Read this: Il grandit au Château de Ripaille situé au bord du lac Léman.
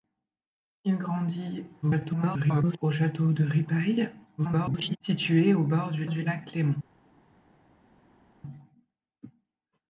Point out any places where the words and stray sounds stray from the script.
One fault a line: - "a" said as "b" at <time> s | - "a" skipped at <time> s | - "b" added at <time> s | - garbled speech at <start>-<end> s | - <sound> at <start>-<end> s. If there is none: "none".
- garbled speech at 1.8-2.8 s
- garbled speech at 4.4-5.0 s
- "du" added at 6.1 s